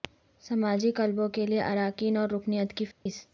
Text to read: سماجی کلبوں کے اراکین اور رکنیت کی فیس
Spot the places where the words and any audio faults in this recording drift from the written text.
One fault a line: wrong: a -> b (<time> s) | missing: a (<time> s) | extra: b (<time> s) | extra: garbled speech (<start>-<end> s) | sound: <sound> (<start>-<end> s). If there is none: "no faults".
extra: لئے (1.4 s)
sound: dropout (2.9-3.1 s)